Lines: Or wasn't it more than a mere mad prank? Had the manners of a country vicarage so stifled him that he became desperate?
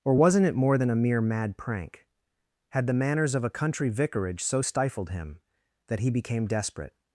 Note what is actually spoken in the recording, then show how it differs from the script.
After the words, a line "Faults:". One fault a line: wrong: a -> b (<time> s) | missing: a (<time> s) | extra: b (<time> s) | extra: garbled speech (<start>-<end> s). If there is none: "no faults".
Or wasn't it more than a mere mad prank? Had the manners of a country vicarage so stifled him that he became desperate?
Faults:
no faults